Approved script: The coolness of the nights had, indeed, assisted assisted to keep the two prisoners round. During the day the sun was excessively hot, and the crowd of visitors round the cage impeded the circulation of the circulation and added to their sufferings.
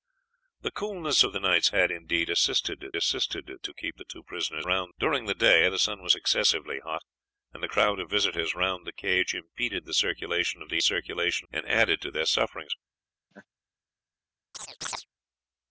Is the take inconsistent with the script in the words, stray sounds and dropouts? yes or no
yes